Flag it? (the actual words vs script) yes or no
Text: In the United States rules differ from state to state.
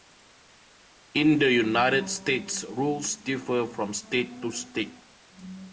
no